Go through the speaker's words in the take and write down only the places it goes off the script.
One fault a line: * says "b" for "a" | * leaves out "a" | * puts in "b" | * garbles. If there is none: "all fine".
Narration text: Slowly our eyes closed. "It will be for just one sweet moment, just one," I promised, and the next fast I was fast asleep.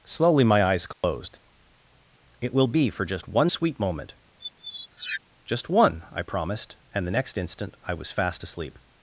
* says "my" for "our"
* says "instant" for "fast"